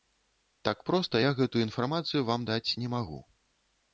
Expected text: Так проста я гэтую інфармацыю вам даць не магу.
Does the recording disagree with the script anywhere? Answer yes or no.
no